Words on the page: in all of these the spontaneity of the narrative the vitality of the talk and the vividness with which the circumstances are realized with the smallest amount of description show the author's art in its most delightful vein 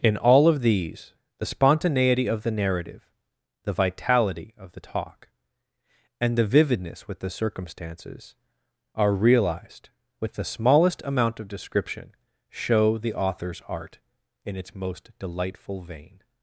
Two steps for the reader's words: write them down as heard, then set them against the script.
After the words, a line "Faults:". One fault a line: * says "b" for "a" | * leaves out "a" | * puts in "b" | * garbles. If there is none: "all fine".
in all of these the spontaneity of the narrative the vitality of the talk and the vividness with the circumstances are realized with the smallest amount of description show the author's art in its most delightful vein
Faults:
* leaves out "which"